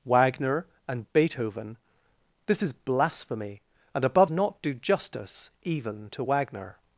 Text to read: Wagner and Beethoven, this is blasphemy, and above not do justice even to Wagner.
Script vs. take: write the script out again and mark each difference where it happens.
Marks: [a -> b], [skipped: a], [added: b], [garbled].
Wagner and Beethoven, this is blasphemy, and above not do justice even to Wagner.